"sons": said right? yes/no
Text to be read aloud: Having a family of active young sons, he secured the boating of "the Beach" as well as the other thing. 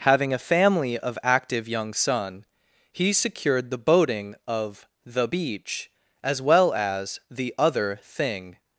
no